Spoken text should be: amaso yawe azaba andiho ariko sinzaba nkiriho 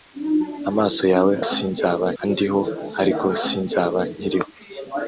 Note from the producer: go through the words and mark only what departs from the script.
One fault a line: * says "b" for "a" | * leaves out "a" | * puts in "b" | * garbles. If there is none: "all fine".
* says "sinzaba" for "azaba"